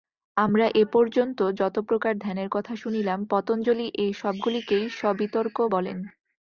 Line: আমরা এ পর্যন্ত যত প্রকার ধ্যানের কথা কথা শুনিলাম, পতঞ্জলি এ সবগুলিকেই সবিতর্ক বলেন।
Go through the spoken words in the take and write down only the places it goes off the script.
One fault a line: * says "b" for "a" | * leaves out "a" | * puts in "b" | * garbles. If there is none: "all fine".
* leaves out "কথা"